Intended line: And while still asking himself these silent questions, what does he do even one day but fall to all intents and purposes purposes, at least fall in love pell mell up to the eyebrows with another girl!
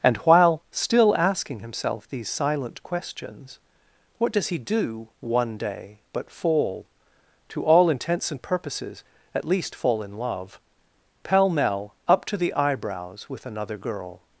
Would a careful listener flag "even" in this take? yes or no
yes